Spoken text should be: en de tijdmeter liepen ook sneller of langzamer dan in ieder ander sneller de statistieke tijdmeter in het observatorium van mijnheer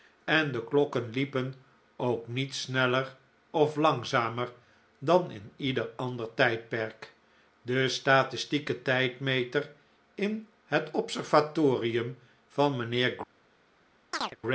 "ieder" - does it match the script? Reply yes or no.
yes